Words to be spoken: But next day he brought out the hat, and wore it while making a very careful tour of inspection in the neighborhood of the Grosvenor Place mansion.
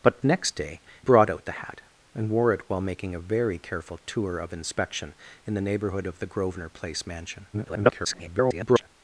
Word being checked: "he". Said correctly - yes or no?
no